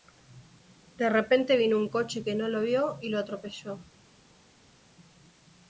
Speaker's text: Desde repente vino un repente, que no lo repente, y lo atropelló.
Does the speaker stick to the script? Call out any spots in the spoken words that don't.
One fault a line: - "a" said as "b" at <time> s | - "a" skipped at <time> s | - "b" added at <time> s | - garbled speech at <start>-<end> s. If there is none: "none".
- "Desde" said as "De" at 1.0 s
- "repente" said as "coche" at 1.9 s
- "repente" said as "vio" at 2.6 s